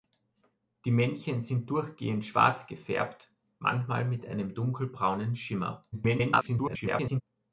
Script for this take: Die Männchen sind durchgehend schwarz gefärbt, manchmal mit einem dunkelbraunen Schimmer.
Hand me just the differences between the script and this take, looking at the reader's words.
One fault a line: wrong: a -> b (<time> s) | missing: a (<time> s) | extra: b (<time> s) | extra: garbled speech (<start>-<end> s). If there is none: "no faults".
extra: garbled speech (5.9-7.2 s)